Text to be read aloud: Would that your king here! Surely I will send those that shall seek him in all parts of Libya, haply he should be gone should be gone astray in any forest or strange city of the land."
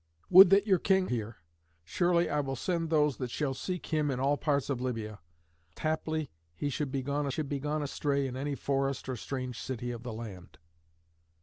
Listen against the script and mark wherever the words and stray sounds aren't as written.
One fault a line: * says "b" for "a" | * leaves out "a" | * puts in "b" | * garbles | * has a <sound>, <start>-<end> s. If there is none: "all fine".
all fine